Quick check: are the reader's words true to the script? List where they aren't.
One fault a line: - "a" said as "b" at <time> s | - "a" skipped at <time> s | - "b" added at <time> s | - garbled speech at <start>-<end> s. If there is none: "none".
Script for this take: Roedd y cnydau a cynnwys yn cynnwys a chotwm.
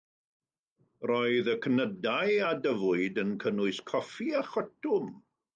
- "cynnwys" said as "dyfwyd" at 2.7 s
- "coffi" added at 3.9 s